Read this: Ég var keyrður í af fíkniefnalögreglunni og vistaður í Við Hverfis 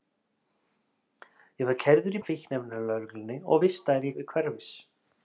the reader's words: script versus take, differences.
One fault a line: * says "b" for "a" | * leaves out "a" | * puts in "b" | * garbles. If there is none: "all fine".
all fine